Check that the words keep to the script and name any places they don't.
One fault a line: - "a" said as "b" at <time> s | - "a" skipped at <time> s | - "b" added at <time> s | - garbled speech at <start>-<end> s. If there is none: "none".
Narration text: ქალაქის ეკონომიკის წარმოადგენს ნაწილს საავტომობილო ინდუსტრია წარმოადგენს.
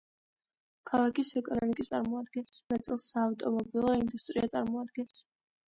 none